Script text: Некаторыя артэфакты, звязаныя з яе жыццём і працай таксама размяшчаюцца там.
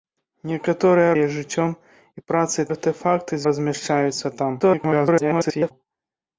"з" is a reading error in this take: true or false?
true